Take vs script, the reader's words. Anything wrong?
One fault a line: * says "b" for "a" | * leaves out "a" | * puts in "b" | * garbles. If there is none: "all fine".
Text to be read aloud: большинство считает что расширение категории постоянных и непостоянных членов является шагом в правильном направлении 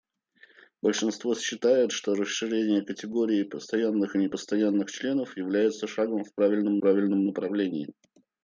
* puts in "правильном"